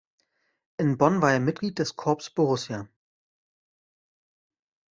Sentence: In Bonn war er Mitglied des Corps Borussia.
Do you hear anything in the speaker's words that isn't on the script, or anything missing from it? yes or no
no